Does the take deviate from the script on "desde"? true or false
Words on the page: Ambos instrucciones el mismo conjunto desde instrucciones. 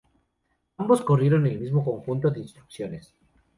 true